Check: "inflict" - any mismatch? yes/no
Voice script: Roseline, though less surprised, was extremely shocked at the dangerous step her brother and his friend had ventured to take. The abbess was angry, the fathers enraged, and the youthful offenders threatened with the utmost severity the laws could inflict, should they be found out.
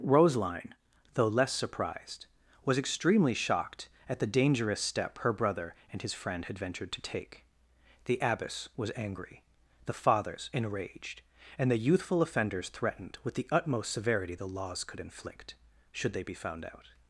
no